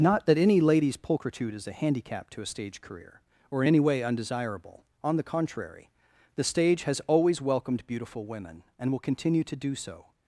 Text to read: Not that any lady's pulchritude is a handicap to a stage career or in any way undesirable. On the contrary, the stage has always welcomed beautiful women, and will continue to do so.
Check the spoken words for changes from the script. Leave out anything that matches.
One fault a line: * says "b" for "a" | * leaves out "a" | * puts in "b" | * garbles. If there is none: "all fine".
all fine